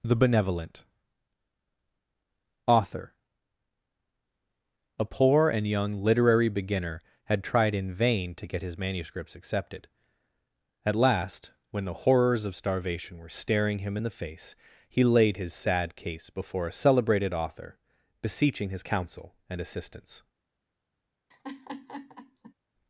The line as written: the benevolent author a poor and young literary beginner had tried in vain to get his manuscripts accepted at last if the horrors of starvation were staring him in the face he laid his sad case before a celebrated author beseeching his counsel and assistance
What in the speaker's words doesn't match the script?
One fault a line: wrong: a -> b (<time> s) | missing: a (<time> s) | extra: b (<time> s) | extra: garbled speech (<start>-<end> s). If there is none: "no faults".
wrong: if -> when (11.7 s)